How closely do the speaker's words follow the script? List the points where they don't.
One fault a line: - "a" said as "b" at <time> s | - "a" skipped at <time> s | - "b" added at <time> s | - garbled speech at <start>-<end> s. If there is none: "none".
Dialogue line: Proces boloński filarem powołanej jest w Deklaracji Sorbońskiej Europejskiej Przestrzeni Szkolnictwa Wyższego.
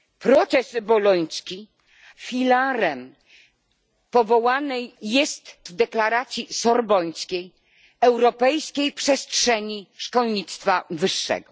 none